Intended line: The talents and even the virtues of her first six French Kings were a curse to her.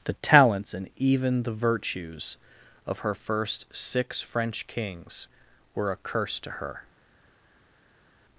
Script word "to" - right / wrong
right